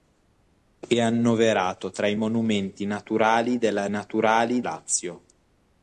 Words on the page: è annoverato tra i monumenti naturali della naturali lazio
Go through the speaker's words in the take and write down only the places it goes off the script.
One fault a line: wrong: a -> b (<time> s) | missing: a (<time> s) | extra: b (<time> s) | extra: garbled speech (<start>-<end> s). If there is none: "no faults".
no faults